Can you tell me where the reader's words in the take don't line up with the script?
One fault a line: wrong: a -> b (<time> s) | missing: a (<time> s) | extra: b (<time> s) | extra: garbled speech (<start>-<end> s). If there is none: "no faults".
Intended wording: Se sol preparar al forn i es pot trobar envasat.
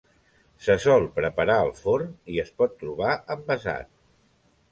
no faults